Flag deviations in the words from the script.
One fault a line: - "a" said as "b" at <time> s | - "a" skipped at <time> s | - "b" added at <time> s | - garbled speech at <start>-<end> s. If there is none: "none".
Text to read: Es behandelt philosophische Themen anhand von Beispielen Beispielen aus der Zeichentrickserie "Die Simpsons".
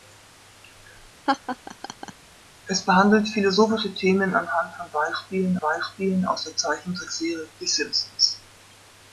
none